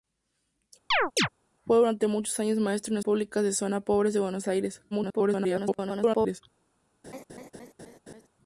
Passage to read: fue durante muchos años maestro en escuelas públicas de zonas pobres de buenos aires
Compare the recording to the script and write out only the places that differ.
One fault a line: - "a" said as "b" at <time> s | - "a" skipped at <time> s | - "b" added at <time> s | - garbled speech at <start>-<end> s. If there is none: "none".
- "escuelas" skipped at 3.0 s
- garbled speech at 4.9-6.4 s